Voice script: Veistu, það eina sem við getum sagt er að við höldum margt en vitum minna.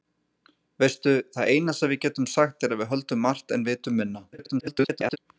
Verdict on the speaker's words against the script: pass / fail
fail